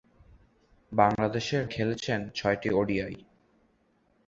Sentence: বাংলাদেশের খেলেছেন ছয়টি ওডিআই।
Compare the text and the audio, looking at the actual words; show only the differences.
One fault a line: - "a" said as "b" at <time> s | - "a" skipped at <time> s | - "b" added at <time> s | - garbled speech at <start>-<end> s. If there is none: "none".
none